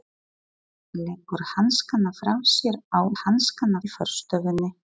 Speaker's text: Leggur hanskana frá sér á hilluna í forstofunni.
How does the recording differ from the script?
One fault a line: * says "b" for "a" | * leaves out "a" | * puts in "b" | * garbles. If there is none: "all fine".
* says "hanskana" for "hilluna"